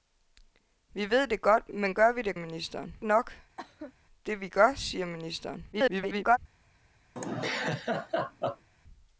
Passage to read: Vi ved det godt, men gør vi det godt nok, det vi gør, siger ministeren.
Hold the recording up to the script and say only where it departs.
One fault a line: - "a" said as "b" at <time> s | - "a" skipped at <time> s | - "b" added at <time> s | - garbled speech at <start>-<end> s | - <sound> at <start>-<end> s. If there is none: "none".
- "godt" said as "ministeren" at 2.3 s
- cough at 3.6-3.9 s
- garbled speech at 5.7-6.4 s
- laugh at 7.2-8.7 s